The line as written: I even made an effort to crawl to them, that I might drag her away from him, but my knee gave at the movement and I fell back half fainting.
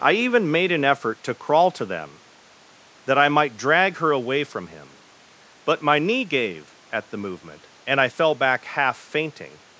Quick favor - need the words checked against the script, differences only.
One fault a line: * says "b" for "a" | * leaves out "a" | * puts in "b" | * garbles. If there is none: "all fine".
all fine